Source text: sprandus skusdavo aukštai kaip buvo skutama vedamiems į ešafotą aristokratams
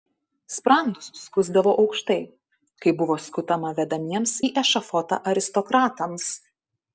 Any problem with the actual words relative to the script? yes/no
no